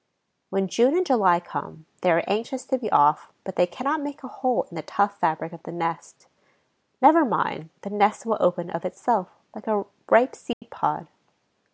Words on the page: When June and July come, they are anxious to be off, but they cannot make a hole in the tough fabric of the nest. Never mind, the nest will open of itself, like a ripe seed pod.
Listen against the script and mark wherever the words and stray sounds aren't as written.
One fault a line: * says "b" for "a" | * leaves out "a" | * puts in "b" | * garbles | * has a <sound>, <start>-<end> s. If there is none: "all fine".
* has a dropout, 10.5-10.6 s